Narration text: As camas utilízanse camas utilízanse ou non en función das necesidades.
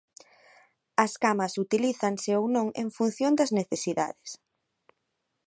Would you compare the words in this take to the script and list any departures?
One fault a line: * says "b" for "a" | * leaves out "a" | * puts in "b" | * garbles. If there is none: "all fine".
* leaves out "camas utilízanse"